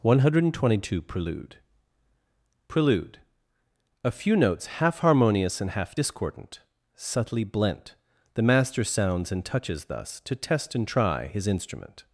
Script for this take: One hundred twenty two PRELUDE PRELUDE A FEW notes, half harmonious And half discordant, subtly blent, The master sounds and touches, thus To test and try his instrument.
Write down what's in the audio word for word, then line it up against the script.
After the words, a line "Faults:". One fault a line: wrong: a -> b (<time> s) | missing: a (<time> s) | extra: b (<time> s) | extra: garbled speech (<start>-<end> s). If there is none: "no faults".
One hundred twenty two PRELUDE PRELUDE A FEW notes, half harmonious And half discordant, subtly blent, The master sounds and touches, thus To test and try his instrument.
Faults:
no faults